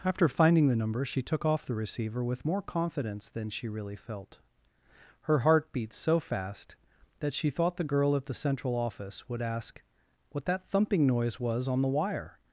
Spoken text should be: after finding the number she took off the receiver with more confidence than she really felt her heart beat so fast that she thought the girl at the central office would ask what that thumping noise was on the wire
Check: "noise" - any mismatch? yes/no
no